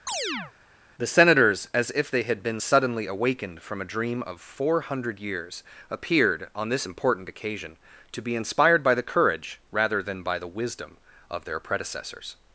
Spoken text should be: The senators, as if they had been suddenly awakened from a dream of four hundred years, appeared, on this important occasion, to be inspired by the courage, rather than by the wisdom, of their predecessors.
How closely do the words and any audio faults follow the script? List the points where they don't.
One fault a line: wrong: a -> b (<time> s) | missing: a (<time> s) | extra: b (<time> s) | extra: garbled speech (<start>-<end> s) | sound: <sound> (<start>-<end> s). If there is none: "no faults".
sound: chirp (0.1-0.5 s)